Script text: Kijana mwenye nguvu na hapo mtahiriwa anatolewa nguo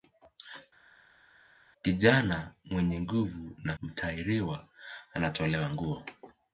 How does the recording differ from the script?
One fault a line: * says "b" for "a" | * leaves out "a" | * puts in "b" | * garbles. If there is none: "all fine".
* leaves out "hapo"